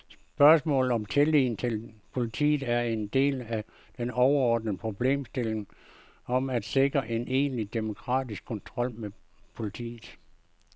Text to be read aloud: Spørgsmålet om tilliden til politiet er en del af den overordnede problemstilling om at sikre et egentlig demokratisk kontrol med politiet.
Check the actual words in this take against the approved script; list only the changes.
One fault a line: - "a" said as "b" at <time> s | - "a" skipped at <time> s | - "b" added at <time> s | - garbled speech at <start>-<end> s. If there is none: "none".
- "et" said as "en" at 7.1 s